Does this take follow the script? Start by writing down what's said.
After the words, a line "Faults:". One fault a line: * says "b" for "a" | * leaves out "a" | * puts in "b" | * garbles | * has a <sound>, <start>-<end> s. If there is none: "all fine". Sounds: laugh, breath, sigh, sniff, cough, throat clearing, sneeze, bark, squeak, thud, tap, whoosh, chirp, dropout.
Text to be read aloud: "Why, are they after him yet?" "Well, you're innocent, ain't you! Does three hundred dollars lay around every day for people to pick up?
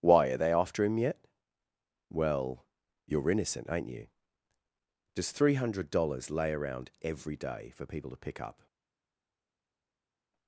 "Why, are they after him yet?" "Well, you're innocent, ain't you! Does three hundred dollars lay around every day for people to pick up?
Faults:
all fine